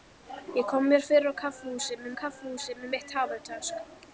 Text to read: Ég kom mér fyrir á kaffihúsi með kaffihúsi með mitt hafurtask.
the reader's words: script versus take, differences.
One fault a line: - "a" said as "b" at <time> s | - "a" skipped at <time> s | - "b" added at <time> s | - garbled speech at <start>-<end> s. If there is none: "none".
none